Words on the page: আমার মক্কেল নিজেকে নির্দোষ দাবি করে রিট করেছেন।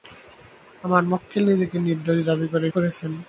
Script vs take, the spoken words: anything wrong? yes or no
yes